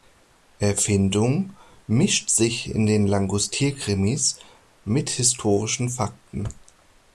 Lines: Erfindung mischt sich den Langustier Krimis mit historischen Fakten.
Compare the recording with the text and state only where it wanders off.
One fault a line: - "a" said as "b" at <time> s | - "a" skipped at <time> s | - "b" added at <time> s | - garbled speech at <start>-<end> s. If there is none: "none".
- "in" added at 2.7 s